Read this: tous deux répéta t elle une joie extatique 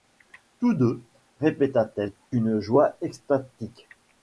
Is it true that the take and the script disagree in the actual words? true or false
false